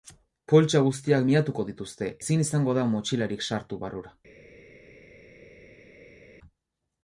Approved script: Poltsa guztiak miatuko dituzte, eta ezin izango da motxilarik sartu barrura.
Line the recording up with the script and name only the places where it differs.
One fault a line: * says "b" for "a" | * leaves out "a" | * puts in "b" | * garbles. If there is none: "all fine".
* leaves out "eta"